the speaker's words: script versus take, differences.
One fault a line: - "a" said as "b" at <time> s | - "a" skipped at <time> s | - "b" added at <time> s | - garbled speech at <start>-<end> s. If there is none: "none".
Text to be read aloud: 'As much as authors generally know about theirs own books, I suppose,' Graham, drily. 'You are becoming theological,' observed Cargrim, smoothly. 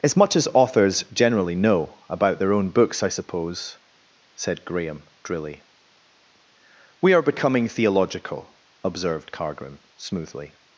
- "theirs" said as "their" at 2.4 s
- "said" added at 4.3 s
- "You" said as "We" at 7.0 s